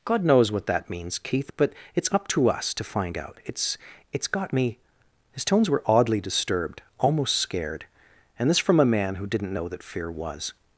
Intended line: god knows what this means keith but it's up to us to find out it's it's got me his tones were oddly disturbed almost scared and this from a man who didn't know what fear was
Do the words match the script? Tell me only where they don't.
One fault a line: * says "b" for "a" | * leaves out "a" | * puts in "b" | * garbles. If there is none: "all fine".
* says "that" for "this"
* says "that" for "what"